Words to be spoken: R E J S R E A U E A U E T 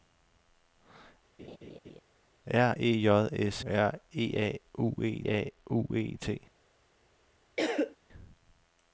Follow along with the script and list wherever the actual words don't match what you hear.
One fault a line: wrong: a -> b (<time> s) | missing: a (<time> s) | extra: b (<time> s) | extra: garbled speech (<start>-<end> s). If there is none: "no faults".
no faults